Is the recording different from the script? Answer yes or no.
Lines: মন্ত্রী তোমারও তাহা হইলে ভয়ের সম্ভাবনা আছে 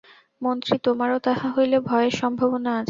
no